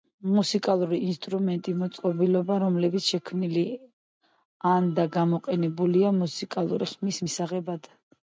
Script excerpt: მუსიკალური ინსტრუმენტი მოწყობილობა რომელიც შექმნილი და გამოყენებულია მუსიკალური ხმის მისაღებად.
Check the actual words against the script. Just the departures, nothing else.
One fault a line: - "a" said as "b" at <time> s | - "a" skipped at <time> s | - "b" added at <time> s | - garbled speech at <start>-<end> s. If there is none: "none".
- "ან" added at 4.7 s